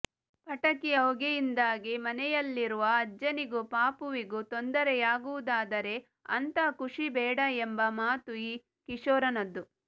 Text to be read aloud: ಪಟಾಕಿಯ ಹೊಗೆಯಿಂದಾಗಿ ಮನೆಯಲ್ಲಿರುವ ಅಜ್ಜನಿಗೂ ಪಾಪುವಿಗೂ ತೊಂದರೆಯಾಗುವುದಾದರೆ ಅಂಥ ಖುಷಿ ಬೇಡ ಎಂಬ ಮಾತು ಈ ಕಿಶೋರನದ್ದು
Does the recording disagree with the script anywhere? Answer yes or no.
no